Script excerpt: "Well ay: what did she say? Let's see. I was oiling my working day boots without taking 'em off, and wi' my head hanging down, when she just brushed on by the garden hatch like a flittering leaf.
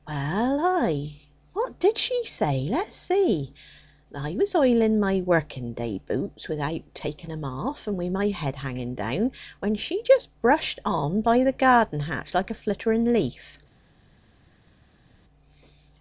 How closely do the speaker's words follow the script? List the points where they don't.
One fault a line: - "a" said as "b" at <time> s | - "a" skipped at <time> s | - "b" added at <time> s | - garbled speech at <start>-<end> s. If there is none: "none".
none